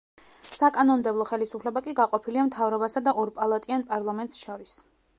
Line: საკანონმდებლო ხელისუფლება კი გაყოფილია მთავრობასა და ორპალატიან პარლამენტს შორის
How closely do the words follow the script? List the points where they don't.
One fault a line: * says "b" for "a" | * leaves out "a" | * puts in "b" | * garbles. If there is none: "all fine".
all fine